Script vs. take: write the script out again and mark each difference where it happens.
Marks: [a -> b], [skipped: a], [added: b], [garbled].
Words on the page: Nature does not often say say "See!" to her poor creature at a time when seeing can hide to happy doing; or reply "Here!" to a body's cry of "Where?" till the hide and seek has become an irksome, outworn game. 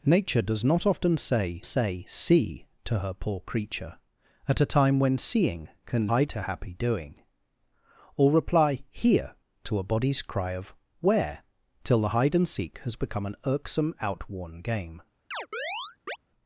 Nature does not often say say "See!" to her poor creature at a time when seeing can hide to happy doing; or reply "Here!" to a body's cry of "Where?" till the hide and seek has become an irksome, outworn game.